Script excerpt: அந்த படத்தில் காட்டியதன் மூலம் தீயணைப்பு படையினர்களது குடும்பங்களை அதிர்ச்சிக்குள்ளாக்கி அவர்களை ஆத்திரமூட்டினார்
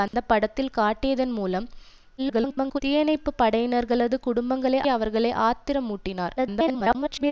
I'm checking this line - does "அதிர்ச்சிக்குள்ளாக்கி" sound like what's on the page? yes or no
no